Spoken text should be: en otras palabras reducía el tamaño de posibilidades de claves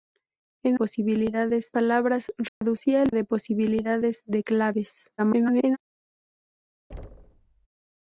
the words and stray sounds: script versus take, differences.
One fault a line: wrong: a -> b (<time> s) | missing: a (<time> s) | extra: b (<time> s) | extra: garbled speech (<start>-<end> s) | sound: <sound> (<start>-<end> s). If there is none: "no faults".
wrong: otras -> posibilidades (0.7 s)
sound: dropout (2.5-2.6 s)
missing: tamaño (3.1 s)
extra: garbled speech (5.2-5.8 s)
sound: thud (6.9-7.7 s)